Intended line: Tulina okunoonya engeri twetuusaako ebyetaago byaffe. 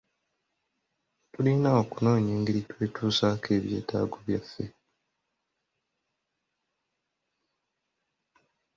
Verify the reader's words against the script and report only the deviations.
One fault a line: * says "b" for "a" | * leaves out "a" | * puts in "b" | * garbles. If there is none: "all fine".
all fine